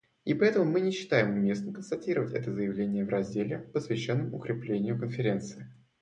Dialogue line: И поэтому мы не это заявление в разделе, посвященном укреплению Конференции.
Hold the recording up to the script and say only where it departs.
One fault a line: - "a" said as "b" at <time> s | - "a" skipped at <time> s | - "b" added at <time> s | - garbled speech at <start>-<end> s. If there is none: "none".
- "считаем уместным констатировать" added at 0.9 s